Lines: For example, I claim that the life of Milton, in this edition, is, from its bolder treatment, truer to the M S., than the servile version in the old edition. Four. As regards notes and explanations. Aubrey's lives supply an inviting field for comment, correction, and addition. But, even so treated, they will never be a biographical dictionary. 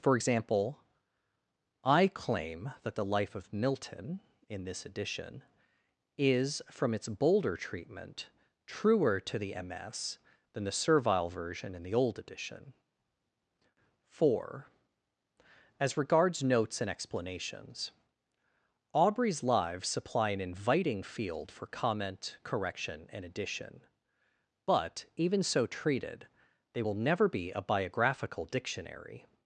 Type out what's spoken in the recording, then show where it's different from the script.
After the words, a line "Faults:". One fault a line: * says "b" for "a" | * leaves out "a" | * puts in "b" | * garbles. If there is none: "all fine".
For example, I claim that the life of Milton, in this edition, is, from its bolder treatment, truer to the M S., than the servile version in the old edition. Four. As regards notes and explanations. Aubrey's lives supply an inviting field for comment, correction, and addition. But, even so treated, they will never be a biographical dictionary.
Faults:
all fine